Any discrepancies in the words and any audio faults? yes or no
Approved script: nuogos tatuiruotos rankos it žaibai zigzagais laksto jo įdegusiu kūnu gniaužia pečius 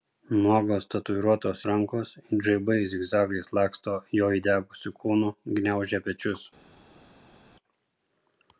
no